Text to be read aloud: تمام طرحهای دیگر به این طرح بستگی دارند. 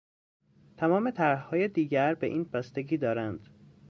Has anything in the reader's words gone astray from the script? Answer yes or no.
yes